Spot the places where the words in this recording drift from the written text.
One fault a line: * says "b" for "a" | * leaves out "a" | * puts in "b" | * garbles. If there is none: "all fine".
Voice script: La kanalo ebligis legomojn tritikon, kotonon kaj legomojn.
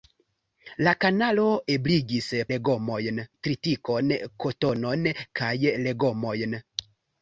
all fine